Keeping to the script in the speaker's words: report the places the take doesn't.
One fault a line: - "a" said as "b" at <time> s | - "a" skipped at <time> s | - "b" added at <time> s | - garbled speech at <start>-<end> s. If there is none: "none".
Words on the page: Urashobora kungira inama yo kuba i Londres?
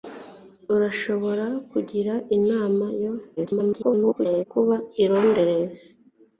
- garbled speech at 3.4-4.5 s